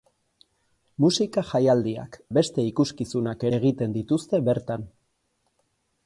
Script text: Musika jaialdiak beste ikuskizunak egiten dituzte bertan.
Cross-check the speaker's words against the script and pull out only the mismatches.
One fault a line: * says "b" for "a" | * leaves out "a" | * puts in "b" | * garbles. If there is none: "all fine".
all fine